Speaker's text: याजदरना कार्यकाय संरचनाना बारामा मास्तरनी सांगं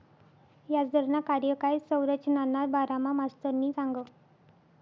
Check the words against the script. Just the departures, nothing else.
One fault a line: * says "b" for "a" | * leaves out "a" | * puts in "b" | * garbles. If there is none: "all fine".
all fine